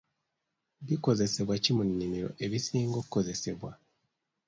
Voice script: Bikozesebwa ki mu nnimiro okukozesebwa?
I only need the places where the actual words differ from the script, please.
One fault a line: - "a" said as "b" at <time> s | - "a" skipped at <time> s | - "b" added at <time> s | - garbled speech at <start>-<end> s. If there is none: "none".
- "ebisinga" added at 2.5 s